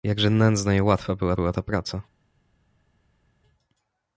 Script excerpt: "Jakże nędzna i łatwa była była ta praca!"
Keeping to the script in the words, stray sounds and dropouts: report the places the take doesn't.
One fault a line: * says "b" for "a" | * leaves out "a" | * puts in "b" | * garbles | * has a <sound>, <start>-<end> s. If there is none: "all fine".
all fine